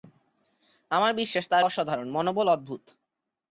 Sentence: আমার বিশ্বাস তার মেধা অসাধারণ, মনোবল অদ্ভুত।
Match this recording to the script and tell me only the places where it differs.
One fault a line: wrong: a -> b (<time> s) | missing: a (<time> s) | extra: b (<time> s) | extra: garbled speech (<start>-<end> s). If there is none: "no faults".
missing: মেধা (1.6 s)